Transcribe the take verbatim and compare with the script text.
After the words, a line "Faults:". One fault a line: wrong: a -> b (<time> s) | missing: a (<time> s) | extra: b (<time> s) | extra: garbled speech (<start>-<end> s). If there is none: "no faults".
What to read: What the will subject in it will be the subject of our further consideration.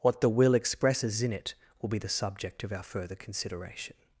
What the will expresses in it will be the subject of our further consideration.
Faults:
wrong: subject -> expresses (0.6 s)